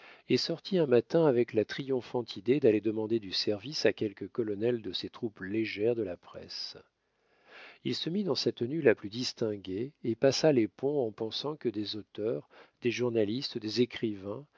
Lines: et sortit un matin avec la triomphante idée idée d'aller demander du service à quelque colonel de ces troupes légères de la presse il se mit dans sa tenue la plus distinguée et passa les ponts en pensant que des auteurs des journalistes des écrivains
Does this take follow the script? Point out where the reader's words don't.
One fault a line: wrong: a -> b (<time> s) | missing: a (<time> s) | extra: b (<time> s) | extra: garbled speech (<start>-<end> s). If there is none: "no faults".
missing: idée (2.6 s)